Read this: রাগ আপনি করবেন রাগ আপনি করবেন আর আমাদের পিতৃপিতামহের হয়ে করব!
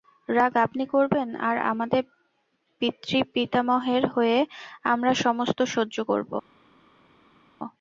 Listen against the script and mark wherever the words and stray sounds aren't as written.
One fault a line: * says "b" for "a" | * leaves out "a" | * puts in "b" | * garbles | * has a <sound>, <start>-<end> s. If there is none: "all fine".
* leaves out "রাগ আপনি করবেন"
* puts in "আমরা সমস্ত সহ্য"